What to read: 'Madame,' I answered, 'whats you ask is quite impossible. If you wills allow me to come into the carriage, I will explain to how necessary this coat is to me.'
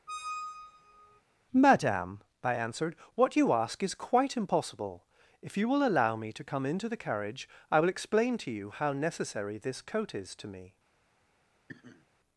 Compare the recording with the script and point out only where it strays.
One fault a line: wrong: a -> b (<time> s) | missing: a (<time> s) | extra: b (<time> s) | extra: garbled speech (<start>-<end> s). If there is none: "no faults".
wrong: whats -> what (3.2 s)
wrong: wills -> will (5.7 s)
extra: you (8.5 s)